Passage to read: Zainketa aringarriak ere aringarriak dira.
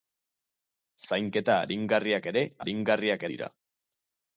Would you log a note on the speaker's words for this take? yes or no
no